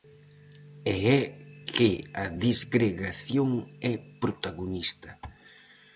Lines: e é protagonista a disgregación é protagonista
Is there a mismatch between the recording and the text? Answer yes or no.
yes